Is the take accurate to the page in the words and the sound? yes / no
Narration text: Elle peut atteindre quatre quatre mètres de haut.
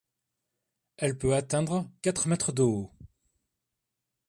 no